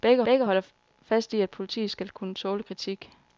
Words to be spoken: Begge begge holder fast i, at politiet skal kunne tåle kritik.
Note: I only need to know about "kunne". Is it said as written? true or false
true